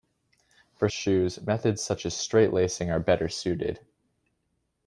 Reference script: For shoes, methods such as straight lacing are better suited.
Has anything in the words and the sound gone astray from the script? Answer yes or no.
no